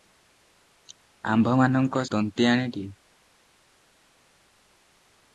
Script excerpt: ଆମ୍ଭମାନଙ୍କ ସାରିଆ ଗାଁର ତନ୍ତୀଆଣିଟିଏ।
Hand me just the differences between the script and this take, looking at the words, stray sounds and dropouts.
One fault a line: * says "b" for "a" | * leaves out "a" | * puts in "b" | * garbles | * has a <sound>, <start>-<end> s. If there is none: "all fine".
* leaves out "ସାରିଆ ଗାଁର"